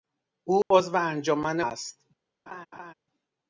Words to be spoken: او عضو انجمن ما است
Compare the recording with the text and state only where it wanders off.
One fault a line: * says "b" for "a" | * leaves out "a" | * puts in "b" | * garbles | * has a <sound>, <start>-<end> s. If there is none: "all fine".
* has a dropout, 0.6-0.7 s
* leaves out "ما"
* has a laugh, 2.5-2.9 s